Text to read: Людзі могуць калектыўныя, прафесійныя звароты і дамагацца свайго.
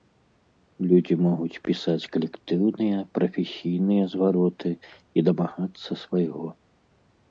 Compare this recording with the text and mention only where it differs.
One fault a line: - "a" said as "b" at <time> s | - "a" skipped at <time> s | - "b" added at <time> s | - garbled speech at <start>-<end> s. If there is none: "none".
- "пісаць" added at 1.7 s